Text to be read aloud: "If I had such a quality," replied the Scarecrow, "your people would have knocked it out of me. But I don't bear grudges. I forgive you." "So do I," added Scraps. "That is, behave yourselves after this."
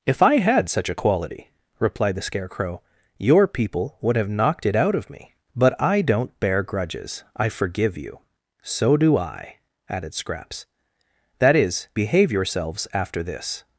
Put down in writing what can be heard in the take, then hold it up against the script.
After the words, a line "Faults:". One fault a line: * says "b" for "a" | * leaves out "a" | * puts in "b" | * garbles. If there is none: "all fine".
"If I had such a quality," replied the Scarecrow, "your people would have knocked it out of me. But I don't bear grudges. I forgive you." "So do I," added Scraps. "That is, behave yourselves after this."
Faults:
all fine